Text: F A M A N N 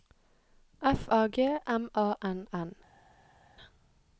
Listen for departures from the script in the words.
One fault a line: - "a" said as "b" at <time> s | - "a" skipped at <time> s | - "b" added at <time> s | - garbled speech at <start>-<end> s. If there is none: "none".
- "G" added at 1.3 s